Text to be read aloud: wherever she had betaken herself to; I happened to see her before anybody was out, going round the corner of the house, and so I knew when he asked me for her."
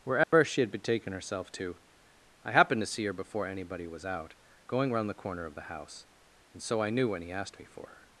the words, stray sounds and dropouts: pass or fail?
fail